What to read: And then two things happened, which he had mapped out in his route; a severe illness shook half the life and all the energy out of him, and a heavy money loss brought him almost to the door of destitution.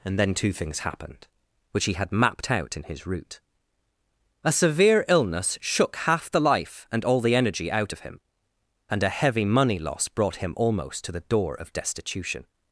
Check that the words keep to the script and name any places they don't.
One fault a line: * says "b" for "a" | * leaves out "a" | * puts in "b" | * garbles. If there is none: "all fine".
all fine